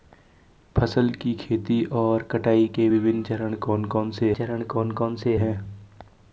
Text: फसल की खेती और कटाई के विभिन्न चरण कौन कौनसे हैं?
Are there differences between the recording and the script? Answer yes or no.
yes